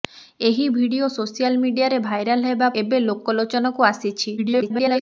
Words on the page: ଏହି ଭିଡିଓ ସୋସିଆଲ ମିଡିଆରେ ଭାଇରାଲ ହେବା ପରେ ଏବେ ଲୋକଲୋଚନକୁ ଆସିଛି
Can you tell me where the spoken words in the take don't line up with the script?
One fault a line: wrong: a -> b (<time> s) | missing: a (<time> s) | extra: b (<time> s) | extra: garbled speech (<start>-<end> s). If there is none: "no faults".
missing: ପରେ (2.7 s)
extra: garbled speech (4.4-5.0 s)